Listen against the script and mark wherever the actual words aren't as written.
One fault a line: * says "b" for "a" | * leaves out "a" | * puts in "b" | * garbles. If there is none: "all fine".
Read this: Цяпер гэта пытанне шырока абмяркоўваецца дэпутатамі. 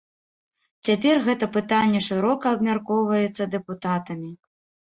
all fine